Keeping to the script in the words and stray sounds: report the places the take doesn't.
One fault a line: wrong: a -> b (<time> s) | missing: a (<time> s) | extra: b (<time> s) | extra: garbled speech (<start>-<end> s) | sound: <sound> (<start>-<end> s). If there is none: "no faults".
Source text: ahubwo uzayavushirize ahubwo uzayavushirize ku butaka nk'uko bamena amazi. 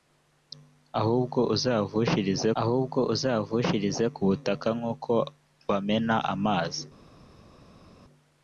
no faults